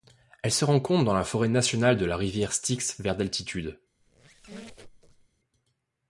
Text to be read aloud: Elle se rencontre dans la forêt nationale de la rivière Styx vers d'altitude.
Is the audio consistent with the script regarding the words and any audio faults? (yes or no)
no